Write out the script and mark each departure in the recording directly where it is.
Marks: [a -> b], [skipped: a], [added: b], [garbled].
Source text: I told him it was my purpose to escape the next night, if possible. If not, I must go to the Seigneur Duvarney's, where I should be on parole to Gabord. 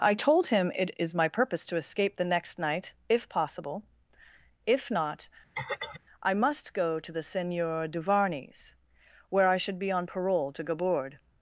I told him it [was -> is] my purpose to escape the next night, if possible. If not, I must go to the Seigneur Duvarney's, where I should be on parole to Gabord.